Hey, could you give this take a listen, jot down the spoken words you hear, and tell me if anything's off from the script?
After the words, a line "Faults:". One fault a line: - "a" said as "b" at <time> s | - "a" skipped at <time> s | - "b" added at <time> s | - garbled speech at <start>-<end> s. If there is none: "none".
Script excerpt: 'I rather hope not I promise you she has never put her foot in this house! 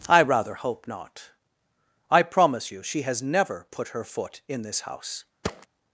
'I rather hope not I promise you she has never put her foot in this house!
Faults:
none